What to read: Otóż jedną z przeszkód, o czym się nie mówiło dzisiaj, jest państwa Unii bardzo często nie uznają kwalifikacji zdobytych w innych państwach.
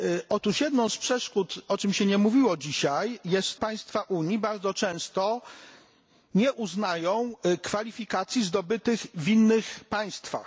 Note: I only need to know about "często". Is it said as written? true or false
true